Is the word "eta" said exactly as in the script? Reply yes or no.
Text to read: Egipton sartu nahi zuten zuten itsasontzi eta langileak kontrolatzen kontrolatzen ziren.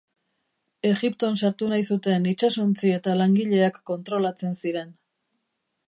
yes